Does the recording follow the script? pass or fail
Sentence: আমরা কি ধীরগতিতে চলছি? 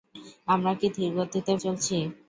pass